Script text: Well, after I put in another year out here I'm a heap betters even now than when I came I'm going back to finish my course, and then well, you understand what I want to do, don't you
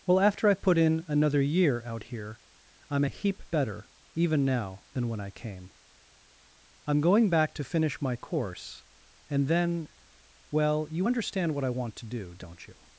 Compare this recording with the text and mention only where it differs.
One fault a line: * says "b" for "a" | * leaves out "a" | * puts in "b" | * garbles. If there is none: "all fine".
* says "better" for "betters"